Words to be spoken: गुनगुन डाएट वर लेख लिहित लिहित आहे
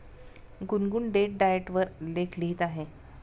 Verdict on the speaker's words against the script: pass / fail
fail